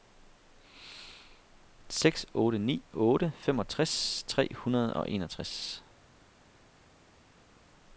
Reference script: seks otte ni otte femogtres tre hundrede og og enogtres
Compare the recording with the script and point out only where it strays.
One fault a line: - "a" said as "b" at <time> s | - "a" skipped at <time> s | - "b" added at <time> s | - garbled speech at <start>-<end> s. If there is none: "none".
- "og" skipped at 5.1 s